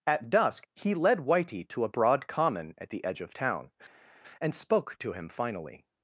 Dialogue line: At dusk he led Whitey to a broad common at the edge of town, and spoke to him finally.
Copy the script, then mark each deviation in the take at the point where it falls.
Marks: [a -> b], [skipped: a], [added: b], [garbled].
At dusk he led Whitey to a broad common at the edge of town, and spoke to him finally.